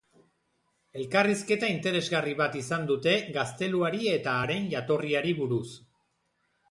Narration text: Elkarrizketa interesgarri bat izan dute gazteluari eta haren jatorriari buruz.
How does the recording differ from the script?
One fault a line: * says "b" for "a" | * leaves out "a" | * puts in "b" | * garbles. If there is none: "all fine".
all fine